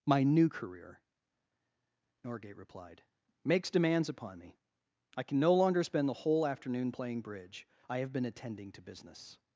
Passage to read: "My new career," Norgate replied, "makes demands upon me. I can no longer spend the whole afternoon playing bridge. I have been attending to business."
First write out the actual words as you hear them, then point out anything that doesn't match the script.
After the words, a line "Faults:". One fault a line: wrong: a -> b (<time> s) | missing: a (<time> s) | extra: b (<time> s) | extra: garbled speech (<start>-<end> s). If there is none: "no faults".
"My new career," Norgate replied, "makes demands upon me. I can no longer spend the whole afternoon playing bridge. I have been attending to business."
Faults:
no faults